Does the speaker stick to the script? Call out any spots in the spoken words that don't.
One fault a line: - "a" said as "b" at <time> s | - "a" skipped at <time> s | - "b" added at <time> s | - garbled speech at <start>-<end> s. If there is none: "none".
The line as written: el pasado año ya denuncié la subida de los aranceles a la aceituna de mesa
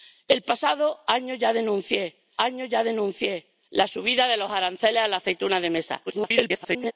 - "año ya denuncié" added at 2.4 s
- garbled speech at 6.1-6.9 s